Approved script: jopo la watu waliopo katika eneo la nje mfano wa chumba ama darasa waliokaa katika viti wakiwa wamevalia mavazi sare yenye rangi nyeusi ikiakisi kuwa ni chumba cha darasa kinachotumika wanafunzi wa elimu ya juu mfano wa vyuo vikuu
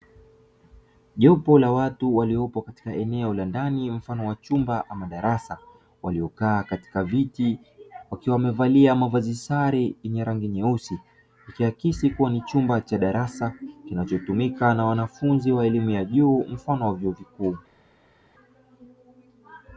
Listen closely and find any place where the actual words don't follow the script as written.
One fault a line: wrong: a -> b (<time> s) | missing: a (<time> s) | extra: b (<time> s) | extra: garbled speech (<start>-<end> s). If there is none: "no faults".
wrong: nje -> ndani (3.5 s)
extra: na (14.7 s)